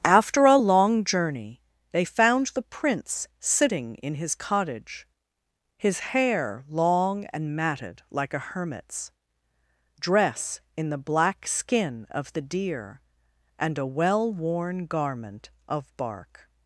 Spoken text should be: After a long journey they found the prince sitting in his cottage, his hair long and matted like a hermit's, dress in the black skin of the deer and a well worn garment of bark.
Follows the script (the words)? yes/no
yes